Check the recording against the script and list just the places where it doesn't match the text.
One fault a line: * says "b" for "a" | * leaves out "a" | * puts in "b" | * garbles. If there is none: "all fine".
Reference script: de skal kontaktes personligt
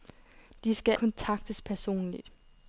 all fine